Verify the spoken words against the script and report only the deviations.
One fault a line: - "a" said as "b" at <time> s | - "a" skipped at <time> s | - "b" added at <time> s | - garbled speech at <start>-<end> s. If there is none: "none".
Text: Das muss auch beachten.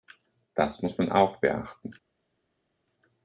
- "man" added at 1.0 s